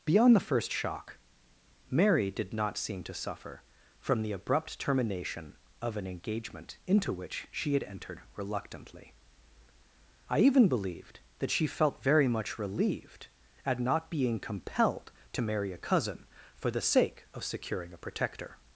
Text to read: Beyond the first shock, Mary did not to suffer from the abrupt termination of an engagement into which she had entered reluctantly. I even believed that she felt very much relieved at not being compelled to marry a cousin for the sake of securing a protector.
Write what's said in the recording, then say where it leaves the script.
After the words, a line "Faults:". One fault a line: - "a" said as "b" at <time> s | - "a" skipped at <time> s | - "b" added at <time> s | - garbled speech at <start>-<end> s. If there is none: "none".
Beyond the first shock, Mary did not seem to suffer from the abrupt termination of an engagement into which she had entered reluctantly. I even believed that she felt very much relieved at not being compelled to marry a cousin for the sake of securing a protector.
Faults:
- "seem" added at 2.8 s